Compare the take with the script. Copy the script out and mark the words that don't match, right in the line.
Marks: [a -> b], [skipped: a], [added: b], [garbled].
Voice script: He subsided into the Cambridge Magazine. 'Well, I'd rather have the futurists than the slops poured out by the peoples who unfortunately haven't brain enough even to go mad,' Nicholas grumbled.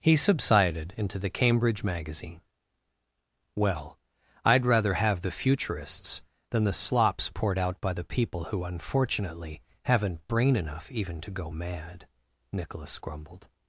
He subsided into the Cambridge Magazine. 'Well, I'd rather have the futurists than the slops poured out by the [peoples -> people] who unfortunately haven't brain enough even to go mad,' Nicholas grumbled.